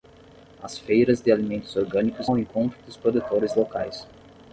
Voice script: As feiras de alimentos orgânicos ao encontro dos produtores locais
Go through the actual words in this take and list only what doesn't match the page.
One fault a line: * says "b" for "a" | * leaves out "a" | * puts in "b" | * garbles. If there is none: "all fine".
all fine